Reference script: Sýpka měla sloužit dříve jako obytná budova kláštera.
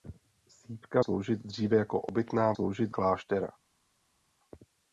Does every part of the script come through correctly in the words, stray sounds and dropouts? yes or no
no